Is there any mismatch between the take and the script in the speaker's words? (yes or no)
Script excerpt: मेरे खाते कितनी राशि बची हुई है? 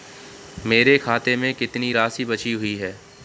yes